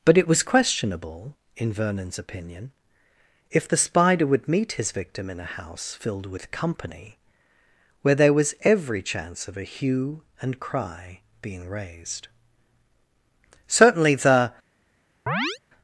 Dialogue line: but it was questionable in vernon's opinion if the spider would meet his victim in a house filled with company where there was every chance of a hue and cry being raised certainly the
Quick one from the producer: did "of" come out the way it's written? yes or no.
yes